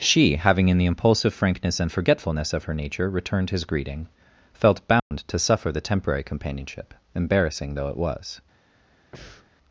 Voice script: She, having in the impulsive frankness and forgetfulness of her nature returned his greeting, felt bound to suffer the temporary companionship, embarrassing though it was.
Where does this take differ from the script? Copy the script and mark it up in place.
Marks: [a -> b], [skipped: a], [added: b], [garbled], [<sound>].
She, having in the impulsive frankness and forgetfulness of her nature returned his greeting, felt bound [dropout] to suffer the temporary companionship, embarrassing though it was. [breath]